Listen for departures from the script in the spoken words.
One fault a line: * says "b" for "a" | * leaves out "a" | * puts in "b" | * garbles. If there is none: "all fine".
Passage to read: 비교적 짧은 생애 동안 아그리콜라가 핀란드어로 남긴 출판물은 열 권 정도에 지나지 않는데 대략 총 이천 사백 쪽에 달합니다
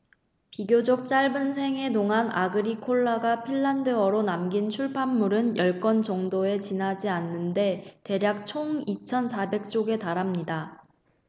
all fine